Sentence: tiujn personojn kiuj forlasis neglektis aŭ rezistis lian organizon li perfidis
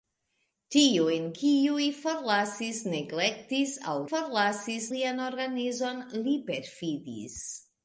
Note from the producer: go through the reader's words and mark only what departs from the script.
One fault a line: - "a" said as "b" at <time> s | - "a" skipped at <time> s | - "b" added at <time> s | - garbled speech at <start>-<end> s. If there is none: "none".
- "personojn" skipped at 1.2 s
- "rezistis" said as "forlasis" at 4.1 s